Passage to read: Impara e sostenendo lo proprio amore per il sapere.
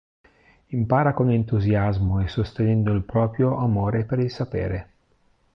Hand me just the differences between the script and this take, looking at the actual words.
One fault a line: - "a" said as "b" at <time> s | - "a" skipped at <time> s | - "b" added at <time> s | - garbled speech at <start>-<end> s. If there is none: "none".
- "con entusiasmo" added at 1.1 s
- "lo" said as "il" at 2.9 s